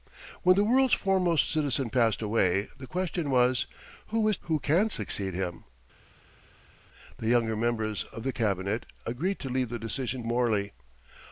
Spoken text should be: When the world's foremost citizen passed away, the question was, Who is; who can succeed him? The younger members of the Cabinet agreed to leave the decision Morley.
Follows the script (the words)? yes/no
yes